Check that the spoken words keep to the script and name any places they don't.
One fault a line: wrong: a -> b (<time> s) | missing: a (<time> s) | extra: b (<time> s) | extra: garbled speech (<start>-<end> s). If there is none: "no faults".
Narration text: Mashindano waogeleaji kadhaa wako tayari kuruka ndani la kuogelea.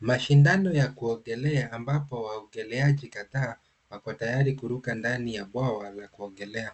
extra: ya kuogelea ambapo (0.7 s)
extra: ya bwawa (5.3 s)